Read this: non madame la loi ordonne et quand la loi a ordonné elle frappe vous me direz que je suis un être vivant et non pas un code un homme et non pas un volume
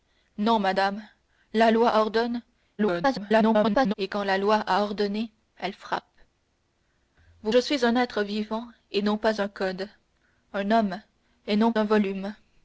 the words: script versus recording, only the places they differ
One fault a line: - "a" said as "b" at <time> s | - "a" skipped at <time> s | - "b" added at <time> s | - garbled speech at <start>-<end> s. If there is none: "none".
- garbled speech at 2.8-3.9 s
- "me direz que" skipped at 7.5 s
- "pas" skipped at 11.7 s